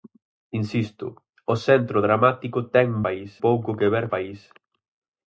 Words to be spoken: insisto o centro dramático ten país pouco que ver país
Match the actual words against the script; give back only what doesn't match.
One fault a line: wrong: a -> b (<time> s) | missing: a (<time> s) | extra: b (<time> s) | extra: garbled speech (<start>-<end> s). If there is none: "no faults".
no faults